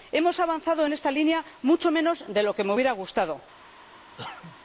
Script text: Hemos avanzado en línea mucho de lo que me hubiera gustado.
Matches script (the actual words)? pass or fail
fail